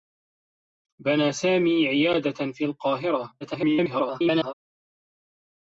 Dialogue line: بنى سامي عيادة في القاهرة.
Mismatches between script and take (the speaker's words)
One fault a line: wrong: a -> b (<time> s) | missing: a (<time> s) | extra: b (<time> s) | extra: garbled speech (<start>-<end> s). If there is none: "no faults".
extra: garbled speech (3.4-4.5 s)